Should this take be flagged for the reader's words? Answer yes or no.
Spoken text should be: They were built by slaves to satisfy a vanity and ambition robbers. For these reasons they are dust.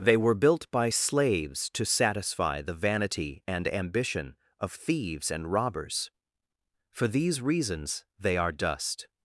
yes